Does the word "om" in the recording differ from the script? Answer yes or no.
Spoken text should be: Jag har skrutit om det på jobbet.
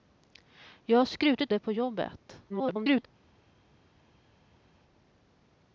yes